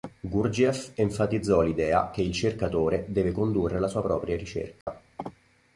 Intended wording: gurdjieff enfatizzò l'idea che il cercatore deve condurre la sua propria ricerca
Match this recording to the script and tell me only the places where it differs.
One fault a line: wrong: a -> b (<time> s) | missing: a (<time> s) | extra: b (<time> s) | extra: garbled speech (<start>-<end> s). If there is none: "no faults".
no faults